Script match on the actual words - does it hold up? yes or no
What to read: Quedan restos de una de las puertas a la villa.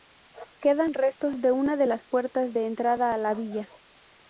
no